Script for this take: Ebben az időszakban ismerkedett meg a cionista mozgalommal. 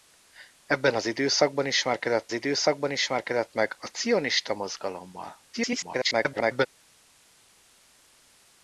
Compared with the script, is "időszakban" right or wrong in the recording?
right